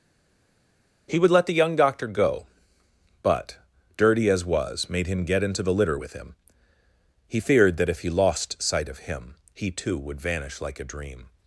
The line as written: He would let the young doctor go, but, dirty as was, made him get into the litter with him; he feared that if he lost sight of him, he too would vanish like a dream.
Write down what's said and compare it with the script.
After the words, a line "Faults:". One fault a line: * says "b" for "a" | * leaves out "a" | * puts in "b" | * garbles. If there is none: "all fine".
He would let the young doctor go, but, dirty as was, made him get into the litter with him; he feared that if he lost sight of him, he too would vanish like a dream.
Faults:
all fine